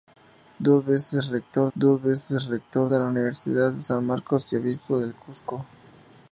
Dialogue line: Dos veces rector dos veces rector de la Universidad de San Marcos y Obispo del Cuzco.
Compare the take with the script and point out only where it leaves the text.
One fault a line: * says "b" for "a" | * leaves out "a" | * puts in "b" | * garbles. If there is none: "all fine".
all fine